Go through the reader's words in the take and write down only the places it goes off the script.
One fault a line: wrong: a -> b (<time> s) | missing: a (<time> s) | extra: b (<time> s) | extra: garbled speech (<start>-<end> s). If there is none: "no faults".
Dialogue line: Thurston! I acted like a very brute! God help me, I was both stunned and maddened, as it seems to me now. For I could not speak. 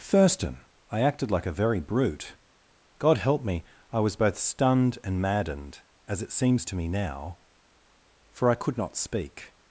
no faults